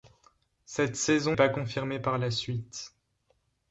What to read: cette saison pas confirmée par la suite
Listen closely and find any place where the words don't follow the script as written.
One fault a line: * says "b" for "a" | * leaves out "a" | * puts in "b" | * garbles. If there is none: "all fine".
all fine